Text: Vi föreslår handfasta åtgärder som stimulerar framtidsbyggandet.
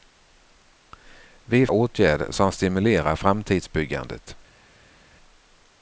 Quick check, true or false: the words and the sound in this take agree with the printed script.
false